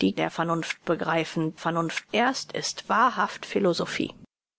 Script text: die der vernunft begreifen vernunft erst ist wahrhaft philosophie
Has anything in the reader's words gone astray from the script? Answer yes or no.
no